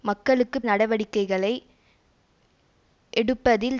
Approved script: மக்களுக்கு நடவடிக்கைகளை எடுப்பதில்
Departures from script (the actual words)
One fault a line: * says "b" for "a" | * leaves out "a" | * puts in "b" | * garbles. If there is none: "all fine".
all fine